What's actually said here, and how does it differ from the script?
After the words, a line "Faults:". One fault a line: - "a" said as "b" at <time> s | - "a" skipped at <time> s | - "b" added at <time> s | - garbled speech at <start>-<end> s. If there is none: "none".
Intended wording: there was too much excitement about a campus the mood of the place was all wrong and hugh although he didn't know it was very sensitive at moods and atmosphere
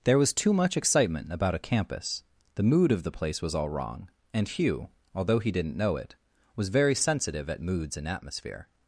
there was too much excitement about a campus the mood of the place was all wrong and hugh although he didn't know it was very sensitive at moods and atmosphere
Faults:
none